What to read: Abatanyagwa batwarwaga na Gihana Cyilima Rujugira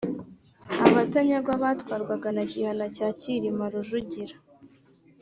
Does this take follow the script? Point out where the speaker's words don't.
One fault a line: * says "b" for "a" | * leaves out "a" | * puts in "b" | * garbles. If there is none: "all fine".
* puts in "cya"